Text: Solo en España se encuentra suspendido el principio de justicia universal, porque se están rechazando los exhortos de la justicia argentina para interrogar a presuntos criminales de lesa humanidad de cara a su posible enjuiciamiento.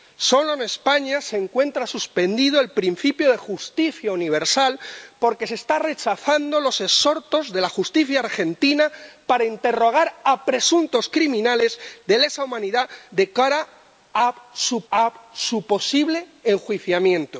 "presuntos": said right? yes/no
yes